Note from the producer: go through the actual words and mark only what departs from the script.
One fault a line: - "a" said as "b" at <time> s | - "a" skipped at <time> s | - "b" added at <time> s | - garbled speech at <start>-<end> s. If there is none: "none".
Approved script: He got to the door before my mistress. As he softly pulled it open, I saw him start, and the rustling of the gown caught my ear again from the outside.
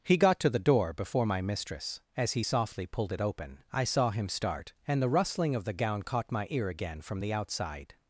none